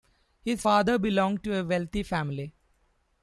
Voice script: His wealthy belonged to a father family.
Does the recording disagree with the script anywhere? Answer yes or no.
yes